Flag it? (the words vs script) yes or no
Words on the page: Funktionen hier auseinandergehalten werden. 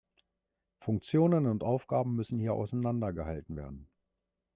yes